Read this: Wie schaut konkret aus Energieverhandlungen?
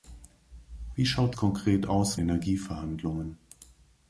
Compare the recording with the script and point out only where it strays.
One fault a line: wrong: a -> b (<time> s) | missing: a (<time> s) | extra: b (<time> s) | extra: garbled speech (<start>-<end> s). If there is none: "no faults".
no faults